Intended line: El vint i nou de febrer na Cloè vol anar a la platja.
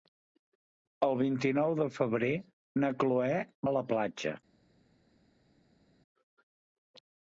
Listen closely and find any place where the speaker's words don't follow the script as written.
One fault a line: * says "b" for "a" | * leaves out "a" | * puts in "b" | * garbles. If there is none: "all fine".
* leaves out "vol anar"